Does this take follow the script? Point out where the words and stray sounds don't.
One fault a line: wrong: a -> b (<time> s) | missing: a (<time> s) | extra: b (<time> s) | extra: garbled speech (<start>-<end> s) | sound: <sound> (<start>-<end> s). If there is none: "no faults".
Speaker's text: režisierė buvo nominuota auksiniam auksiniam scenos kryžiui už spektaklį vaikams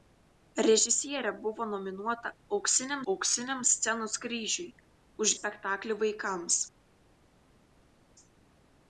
no faults